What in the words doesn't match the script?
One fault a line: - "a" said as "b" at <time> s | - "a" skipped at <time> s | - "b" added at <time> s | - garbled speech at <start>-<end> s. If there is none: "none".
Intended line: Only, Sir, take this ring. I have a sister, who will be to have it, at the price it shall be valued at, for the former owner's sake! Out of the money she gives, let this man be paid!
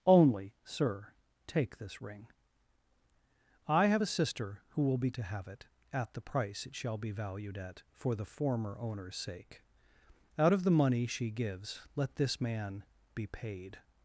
none